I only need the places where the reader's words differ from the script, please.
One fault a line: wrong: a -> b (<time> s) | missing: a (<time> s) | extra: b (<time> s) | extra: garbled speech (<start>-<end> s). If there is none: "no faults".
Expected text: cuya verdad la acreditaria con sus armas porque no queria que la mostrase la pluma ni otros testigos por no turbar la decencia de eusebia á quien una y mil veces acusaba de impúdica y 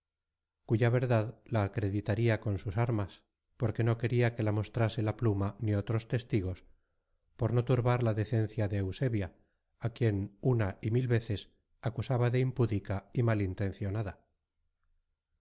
no faults